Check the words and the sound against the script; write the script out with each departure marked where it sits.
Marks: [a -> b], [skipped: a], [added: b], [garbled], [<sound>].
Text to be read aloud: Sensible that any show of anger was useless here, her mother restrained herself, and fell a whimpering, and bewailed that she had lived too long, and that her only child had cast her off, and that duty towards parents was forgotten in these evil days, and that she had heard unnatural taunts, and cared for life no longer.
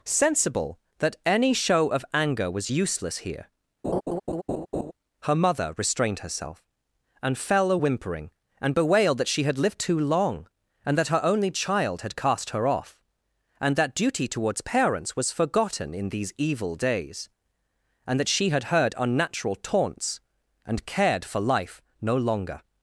Sensible that any show of anger was useless here, [laugh] her mother restrained herself, and fell a whimpering, and bewailed that she had lived too long, and that her only child had cast her off, and that duty towards parents was forgotten in these evil days, and that she had heard unnatural taunts, and cared for life no longer.